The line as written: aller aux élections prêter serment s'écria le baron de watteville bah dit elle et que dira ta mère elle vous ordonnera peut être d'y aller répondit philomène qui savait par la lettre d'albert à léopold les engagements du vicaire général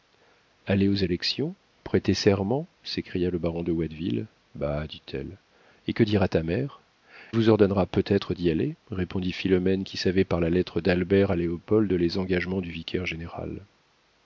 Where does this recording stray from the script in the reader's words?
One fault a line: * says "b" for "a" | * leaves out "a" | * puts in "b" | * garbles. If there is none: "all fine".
* leaves out "elle"